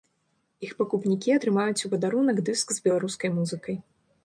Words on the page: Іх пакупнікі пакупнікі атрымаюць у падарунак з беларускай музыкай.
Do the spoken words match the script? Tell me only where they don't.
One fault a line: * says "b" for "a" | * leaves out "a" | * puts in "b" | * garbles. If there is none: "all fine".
* leaves out "пакупнікі"
* puts in "дыск"